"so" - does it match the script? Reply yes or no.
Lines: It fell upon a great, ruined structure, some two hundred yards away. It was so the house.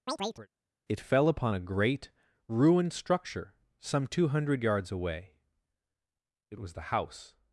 no